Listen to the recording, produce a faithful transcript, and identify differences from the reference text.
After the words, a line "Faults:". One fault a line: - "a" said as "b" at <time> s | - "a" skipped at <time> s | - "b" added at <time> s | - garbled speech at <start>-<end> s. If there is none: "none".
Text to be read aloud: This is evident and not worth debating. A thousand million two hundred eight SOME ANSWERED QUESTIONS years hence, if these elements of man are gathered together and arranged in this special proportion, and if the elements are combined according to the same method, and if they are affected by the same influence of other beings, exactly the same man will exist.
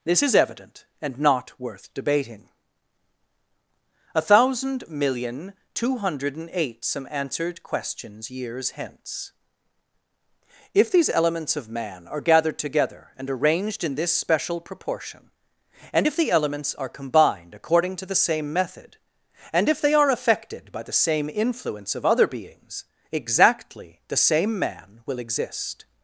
This is evident and not worth debating. A thousand million two hundred and eight SOME ANSWERED QUESTIONS years hence, if these elements of man are gathered together and arranged in this special proportion, and if the elements are combined according to the same method, and if they are affected by the same influence of other beings, exactly the same man will exist.
Faults:
- "and" added at 6.3 s